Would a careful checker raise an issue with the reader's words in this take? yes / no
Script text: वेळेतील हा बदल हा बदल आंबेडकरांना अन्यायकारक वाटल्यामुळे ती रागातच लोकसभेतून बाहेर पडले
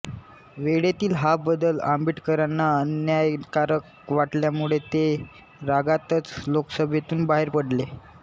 yes